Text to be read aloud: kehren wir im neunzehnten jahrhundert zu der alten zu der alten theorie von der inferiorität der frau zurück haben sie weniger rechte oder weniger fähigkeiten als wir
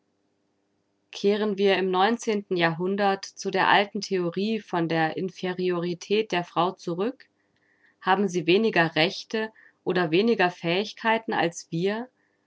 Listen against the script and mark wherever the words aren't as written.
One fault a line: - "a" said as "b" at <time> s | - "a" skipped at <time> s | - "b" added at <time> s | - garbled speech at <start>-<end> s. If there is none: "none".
- "zu der alten" skipped at 4.0 s